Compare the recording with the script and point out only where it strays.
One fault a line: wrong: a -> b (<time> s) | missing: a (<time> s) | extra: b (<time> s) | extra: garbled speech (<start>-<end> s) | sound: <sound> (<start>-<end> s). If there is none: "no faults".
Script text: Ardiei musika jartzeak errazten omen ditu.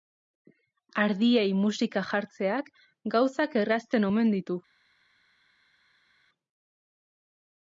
extra: gauzak (3.1 s)